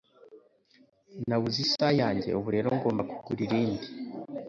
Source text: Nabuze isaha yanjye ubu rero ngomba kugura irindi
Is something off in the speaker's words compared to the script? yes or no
no